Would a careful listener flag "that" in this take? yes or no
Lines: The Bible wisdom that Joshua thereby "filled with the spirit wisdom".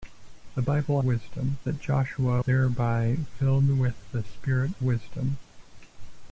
no